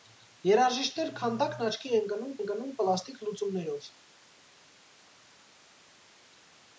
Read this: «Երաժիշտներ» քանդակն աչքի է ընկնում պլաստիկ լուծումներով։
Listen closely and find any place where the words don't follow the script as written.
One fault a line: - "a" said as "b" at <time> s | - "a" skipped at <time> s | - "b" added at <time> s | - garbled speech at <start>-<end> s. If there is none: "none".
- "ընկնում" added at 2.4 s